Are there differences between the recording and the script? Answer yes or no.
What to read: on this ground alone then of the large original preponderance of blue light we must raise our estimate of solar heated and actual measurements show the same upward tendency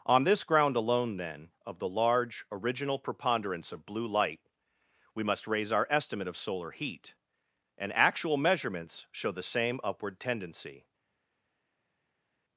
yes